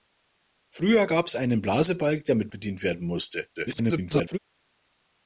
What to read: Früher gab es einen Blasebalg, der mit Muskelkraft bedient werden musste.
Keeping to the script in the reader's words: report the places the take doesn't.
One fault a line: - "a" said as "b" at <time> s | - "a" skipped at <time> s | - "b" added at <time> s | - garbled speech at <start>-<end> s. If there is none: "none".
- "Muskelkraft" skipped at 2.5 s
- garbled speech at 3.5-4.4 s